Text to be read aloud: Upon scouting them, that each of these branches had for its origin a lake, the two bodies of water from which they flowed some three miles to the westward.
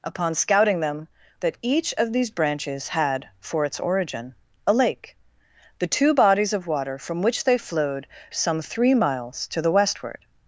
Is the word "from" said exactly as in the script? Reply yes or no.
yes